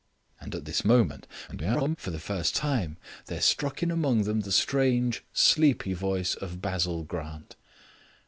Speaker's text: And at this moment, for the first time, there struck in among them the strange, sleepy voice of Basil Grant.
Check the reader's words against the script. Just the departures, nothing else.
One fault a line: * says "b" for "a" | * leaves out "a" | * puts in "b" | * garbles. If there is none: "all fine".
* garbles